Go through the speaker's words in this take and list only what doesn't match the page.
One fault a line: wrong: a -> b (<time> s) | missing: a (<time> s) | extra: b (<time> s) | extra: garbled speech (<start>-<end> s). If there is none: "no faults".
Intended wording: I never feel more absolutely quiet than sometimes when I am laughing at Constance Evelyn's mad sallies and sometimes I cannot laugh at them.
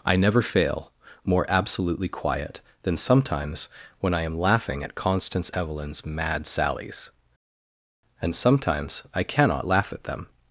wrong: feel -> fail (0.4 s)